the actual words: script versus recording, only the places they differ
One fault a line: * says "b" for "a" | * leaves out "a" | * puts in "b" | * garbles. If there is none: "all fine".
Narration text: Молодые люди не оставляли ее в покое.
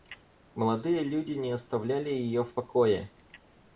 all fine